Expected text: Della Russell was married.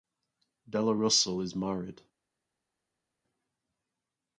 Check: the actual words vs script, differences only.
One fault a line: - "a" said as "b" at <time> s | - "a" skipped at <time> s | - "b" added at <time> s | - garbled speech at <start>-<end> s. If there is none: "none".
- "was" said as "is" at 1.4 s